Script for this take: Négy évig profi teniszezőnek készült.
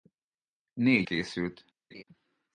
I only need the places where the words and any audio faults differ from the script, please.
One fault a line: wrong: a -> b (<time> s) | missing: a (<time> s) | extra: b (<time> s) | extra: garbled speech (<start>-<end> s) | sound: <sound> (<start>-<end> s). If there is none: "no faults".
missing: évig profi teniszezőnek (1.1 s)
sound: laugh (1.9-2.0 s)